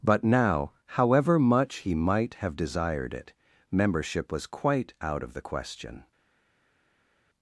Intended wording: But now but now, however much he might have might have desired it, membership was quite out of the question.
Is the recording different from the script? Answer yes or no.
yes